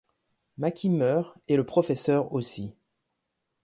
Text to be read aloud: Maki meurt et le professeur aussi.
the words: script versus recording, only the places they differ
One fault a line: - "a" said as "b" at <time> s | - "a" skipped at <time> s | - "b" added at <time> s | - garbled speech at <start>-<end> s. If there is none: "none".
none